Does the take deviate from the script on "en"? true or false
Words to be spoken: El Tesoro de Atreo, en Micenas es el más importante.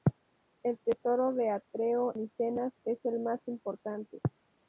true